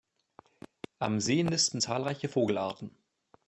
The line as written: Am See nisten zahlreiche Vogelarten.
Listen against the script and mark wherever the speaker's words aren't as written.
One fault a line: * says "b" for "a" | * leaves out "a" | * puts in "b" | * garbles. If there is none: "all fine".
all fine